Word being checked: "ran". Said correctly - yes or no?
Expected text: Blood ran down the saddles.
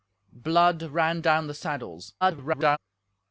yes